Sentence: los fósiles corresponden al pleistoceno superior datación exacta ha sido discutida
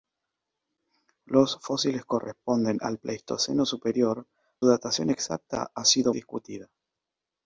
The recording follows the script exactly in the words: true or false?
true